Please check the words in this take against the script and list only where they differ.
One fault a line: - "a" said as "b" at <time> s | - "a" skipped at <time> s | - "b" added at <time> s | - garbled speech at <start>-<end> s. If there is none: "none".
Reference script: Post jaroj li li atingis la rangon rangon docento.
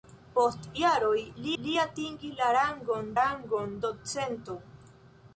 none